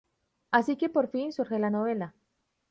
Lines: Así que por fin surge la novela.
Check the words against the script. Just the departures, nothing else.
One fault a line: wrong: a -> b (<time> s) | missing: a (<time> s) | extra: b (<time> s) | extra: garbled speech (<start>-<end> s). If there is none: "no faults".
no faults